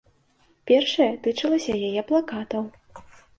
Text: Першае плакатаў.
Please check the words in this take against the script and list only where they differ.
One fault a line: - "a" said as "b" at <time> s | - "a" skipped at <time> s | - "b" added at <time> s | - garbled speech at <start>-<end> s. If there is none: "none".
- "тычылася яе" added at 1.2 s